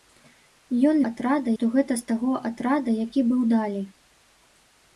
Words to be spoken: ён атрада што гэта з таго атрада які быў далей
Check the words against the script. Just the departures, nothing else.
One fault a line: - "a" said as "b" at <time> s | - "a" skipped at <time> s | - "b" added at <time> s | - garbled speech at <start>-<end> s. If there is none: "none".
none